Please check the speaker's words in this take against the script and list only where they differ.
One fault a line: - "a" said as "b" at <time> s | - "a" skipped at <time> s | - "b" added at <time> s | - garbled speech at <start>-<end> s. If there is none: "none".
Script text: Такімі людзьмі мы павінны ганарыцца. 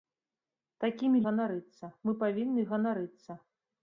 - "людзьмі" said as "ганарыцца" at 1.3 s